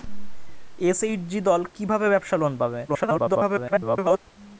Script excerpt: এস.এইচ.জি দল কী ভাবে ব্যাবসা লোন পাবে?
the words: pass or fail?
fail